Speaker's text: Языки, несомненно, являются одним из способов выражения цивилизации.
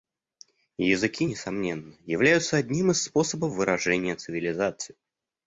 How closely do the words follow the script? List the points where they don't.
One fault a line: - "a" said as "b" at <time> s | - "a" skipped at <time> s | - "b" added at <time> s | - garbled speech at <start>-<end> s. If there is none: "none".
none